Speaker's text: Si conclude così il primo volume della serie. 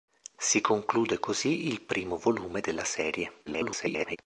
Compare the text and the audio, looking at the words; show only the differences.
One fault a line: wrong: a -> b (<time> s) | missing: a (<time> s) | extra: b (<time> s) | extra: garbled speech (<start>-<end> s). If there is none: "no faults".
extra: garbled speech (3.5-4.2 s)